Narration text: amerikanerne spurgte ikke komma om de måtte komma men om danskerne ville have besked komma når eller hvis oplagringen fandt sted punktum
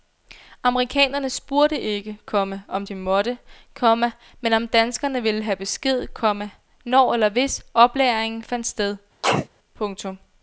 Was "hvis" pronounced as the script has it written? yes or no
yes